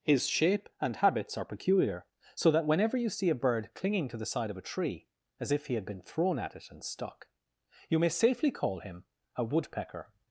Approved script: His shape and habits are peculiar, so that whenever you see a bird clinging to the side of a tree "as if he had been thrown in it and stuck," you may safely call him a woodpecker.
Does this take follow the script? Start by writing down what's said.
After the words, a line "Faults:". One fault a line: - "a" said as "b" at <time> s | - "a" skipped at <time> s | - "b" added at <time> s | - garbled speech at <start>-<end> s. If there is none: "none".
His shape and habits are peculiar, so that whenever you see a bird clinging to the side of a tree "as if he had been thrown at it and stuck," you may safely call him a woodpecker.
Faults:
- "in" said as "at" at 6.4 s